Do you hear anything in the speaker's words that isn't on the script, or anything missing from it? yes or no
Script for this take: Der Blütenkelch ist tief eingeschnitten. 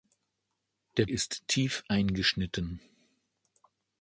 yes